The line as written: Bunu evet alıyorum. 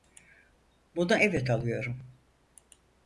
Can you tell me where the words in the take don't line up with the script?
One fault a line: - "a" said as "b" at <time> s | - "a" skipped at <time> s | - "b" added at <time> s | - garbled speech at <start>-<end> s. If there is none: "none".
none